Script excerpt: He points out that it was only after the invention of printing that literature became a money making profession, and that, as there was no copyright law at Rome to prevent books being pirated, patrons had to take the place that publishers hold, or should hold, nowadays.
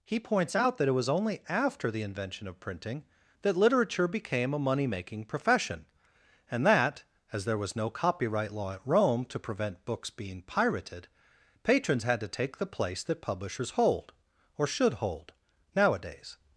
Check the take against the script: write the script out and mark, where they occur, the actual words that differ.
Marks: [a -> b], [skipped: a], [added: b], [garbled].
He points out that it was only after the invention of printing that literature became a money making profession, and that, as there was no copyright law at Rome to prevent books being pirated, patrons had to take the place that publishers hold, or should hold, nowadays.